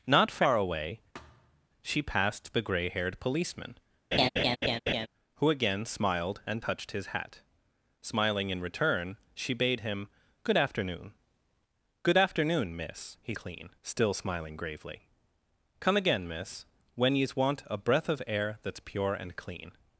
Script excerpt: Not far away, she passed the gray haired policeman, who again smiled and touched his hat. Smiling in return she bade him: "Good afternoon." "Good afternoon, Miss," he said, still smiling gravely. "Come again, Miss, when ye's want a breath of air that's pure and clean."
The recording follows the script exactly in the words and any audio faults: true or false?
false